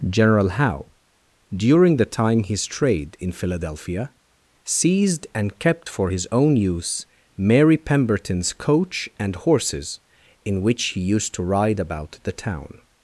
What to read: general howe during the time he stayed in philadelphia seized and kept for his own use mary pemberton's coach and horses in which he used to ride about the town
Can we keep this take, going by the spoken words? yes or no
no